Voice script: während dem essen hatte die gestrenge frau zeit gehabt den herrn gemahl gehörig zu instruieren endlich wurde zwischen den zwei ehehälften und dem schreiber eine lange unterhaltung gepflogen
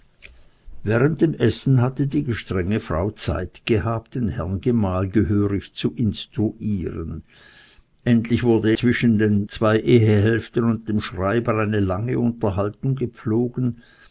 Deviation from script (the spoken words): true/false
false